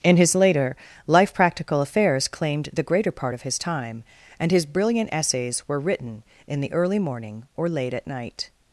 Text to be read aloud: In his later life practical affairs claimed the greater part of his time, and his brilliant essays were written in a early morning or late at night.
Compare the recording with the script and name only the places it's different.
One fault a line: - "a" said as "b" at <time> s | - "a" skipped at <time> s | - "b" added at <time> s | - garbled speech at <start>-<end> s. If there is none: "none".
- "a" said as "the" at 6.6 s